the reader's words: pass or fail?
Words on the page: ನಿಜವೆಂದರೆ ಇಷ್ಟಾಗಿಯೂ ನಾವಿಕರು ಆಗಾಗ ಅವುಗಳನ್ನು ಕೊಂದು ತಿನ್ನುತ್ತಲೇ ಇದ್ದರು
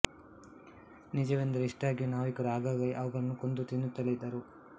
pass